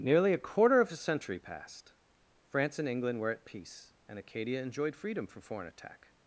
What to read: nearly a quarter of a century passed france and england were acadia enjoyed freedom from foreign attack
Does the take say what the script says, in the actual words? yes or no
no